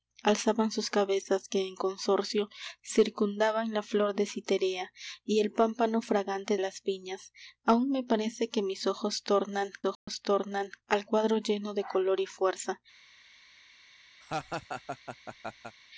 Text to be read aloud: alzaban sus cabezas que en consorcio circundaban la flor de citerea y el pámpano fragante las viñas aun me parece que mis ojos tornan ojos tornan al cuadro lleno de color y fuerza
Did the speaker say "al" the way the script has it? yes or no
yes